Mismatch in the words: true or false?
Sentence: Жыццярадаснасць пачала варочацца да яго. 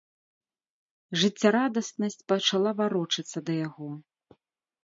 false